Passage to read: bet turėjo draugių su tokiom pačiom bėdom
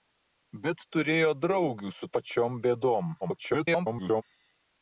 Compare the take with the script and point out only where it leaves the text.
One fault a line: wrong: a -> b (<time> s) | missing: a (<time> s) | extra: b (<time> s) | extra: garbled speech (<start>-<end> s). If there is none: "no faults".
missing: tokiom (2.1 s)
extra: garbled speech (3.2-4.2 s)